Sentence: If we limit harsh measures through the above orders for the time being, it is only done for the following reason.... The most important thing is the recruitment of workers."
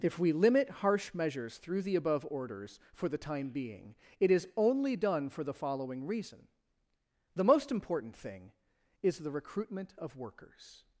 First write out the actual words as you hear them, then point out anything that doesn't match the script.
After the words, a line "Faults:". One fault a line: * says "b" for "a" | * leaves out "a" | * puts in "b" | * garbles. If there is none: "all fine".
If we limit harsh measures through the above orders for the time being, it is only done for the following reason.... The most important thing is the recruitment of workers."
Faults:
all fine